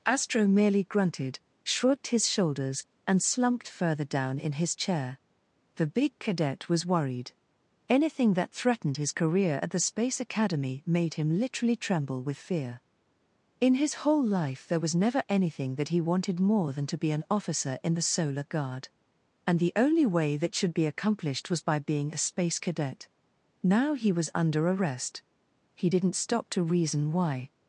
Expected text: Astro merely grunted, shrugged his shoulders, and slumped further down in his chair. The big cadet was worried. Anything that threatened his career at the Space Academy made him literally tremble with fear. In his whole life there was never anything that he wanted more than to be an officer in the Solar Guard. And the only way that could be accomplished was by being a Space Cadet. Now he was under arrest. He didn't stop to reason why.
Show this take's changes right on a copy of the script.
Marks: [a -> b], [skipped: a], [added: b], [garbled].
Astro merely grunted, shrugged his shoulders, and slumped further down in his chair. The big cadet was worried. Anything that threatened his career at the Space Academy made him literally tremble with fear. In his whole life there was never anything that he wanted more than to be an officer in the Solar Guard. And the only way that [could -> should] be accomplished was by being a Space Cadet. Now he was under arrest. He didn't stop to reason why.